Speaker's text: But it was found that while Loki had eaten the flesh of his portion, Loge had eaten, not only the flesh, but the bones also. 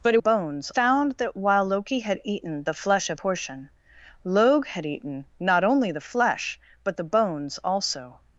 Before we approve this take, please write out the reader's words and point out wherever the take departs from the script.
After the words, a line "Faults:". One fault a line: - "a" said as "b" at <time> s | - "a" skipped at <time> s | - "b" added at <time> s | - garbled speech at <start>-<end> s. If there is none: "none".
But it bones found that while Loki had eaten the flesh of portion, Loge had eaten, not only the flesh, but the bones also.
Faults:
- "was" said as "bones" at 0.2 s
- "his" skipped at 3.2 s